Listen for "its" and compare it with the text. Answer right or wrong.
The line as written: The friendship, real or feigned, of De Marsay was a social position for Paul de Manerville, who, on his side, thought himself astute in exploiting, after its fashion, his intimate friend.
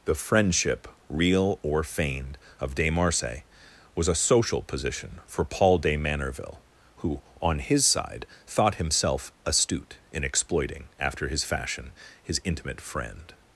wrong